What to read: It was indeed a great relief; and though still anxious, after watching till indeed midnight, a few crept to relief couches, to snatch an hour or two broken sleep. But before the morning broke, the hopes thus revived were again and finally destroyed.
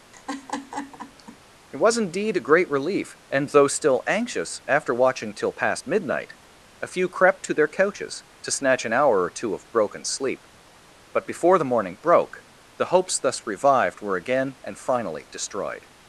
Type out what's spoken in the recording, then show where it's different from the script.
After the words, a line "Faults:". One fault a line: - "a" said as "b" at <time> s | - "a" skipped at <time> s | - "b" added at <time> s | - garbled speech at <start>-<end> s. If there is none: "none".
It was indeed a great relief; and though still anxious, after watching till past midnight, a few crept to their couches, to snatch an hour or two of broken sleep. But before the morning broke, the hopes thus revived were again and finally destroyed.
Faults:
- "indeed" said as "past" at 5.5 s
- "relief" said as "their" at 7.5 s
- "of" added at 9.5 s